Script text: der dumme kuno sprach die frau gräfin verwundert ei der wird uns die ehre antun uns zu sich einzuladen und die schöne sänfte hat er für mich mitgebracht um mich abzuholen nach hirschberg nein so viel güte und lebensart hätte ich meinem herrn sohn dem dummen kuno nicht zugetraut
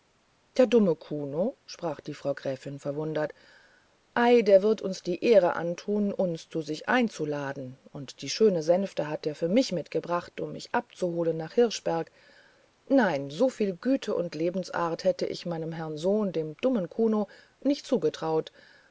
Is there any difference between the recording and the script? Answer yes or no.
no